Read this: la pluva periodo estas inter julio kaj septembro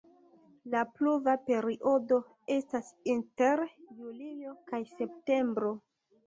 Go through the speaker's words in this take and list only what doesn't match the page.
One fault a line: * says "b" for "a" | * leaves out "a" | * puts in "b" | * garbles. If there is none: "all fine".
all fine